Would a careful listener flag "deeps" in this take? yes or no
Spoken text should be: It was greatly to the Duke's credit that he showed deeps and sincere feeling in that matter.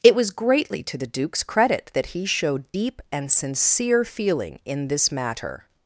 yes